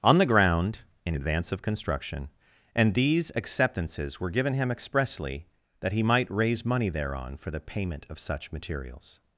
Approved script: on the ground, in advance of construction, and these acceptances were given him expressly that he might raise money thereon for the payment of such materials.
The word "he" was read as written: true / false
true